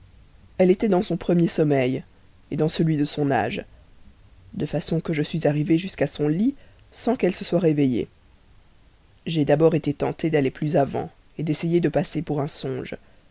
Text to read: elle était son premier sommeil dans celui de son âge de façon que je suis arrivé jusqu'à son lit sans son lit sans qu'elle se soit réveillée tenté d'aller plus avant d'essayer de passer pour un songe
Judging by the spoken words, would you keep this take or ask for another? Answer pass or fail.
fail